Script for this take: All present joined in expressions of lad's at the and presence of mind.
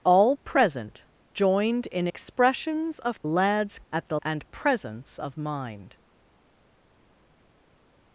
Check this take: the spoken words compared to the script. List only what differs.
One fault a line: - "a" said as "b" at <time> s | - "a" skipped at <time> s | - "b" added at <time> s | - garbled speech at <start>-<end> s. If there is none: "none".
none